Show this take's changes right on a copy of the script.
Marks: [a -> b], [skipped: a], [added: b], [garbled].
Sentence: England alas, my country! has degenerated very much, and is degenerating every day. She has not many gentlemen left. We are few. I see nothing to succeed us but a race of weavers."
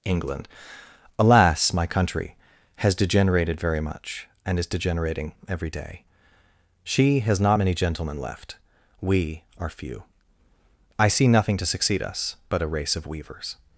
England alas, my country! has degenerated very much, and is degenerating every day. She has not many gentlemen left. We are few. I see nothing to succeed us but a race of weavers."